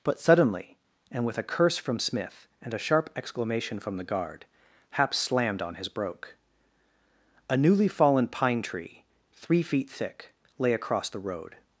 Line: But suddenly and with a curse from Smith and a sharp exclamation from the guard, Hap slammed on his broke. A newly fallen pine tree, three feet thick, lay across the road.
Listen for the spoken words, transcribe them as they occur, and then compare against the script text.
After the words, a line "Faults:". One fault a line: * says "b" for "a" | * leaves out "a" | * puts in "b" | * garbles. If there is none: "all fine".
But suddenly and with a curse from Smith and a sharp exclamation from the guard, Hap slammed on his broke. A newly fallen pine tree, three feet thick, lay across the road.
Faults:
all fine